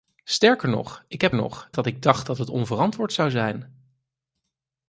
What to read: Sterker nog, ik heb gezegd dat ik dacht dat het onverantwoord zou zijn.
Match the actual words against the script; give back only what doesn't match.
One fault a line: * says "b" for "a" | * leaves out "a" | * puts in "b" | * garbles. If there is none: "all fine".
* says "nog" for "gezegd"